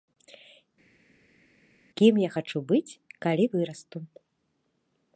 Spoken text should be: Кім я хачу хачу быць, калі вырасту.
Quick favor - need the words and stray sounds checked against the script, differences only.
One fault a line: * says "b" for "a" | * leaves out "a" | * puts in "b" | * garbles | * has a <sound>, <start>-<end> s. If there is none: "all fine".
* leaves out "хачу"